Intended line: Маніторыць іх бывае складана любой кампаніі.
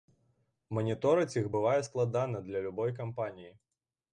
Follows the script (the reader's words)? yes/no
no